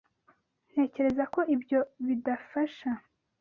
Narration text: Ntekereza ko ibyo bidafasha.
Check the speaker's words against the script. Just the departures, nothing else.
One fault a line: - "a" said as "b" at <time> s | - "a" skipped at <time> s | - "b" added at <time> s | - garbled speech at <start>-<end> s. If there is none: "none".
none